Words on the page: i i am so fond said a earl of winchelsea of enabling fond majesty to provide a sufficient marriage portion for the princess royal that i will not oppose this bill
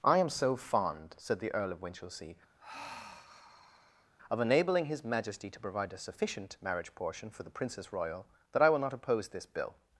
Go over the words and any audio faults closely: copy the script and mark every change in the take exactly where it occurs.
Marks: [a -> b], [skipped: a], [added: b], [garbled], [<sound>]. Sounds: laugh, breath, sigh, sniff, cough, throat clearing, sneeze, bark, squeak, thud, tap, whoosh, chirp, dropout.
i [skipped: i] am so fond said [a -> the] earl of winchelsea [sigh] of enabling [fond -> his] majesty to provide a sufficient marriage portion for the princess royal that i will not oppose this bill